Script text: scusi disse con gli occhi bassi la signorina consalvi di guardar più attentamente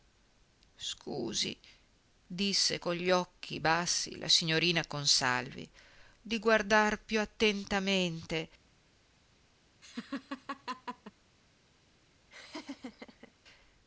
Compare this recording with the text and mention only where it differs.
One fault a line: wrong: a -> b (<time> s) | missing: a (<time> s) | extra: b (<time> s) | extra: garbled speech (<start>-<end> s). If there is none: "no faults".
no faults